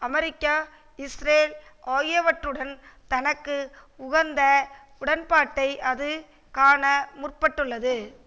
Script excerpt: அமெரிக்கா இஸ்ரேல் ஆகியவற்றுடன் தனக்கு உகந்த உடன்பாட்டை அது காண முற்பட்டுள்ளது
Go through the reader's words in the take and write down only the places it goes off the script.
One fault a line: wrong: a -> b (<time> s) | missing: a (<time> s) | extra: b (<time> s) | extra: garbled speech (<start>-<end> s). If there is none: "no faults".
no faults